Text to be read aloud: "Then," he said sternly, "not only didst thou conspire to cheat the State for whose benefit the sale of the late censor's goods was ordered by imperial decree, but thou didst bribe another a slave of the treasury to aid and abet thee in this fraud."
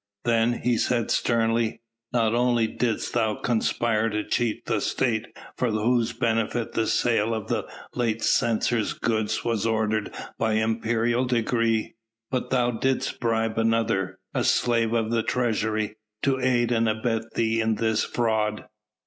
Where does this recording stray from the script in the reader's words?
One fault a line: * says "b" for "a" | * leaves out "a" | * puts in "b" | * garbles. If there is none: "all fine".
all fine